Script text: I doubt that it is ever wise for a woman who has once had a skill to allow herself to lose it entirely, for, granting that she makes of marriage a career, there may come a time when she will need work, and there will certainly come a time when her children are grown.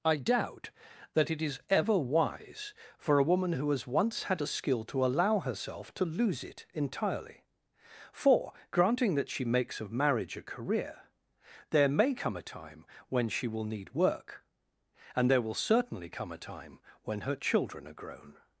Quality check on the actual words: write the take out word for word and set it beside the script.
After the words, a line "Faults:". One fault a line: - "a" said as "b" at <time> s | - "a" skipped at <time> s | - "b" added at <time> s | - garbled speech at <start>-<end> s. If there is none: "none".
I doubt that it is ever wise for a woman who has once had a skill to allow herself to lose it entirely, for, granting that she makes of marriage a career, there may come a time when she will need work, and there will certainly come a time when her children are grown.
Faults:
none